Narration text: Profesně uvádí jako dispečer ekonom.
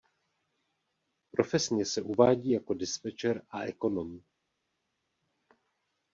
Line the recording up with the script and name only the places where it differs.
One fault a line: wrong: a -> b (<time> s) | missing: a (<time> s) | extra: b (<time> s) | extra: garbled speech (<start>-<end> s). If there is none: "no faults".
extra: se (1.9 s)
extra: a (3.5 s)